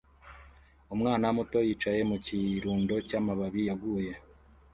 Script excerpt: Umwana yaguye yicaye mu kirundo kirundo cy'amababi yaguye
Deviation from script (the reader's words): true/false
true